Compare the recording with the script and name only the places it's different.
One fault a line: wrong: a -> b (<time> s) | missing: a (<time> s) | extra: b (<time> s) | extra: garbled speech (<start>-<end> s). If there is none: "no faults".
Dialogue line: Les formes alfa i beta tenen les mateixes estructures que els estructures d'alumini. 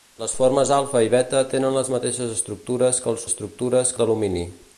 no faults